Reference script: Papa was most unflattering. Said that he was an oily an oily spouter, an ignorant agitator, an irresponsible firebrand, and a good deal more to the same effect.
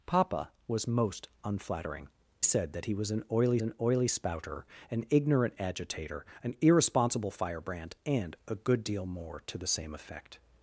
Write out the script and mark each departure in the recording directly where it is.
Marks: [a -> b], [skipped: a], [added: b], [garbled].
Papa was most unflattering. Said that he was an oily an oily spouter, an ignorant agitator, an irresponsible firebrand, and a good deal more to the same effect.